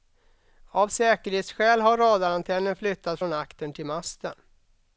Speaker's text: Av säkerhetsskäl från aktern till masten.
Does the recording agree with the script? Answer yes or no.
no